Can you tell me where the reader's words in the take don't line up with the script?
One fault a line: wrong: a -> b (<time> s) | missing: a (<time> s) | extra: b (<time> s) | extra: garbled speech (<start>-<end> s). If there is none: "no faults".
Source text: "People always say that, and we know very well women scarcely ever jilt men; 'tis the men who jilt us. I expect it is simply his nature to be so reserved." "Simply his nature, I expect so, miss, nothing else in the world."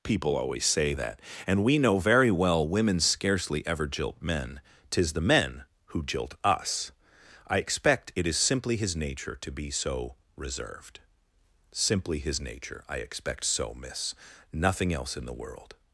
no faults